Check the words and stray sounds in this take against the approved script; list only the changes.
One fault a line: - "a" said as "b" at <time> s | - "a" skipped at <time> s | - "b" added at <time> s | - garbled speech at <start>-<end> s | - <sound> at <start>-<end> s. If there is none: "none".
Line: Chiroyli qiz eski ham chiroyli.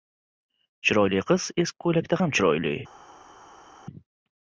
- "ko‘ylakda" added at 1.9 s